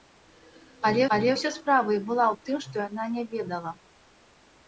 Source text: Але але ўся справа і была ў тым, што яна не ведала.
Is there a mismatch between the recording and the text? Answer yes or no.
no